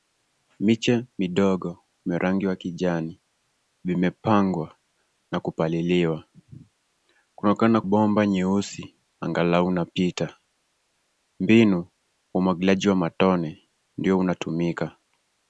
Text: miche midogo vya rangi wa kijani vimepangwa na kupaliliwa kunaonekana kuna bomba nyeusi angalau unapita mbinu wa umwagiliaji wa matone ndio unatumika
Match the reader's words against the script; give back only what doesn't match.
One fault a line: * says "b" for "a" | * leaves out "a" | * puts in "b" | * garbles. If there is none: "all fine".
* leaves out "kuna"